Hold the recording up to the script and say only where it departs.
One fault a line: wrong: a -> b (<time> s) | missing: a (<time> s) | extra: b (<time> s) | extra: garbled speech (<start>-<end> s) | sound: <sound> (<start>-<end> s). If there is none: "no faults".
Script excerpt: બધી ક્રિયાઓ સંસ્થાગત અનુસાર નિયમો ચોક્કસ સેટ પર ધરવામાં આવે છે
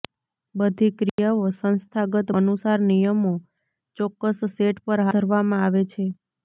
sound: dropout (1.1-1.2 s)